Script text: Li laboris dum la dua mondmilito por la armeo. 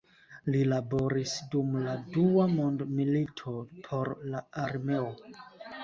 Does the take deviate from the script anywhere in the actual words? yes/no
no